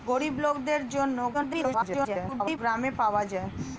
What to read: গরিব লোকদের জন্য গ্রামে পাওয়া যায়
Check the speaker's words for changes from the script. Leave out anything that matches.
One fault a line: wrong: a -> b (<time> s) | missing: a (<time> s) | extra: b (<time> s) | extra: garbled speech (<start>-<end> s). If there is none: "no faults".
extra: garbled speech (1.3-2.6 s)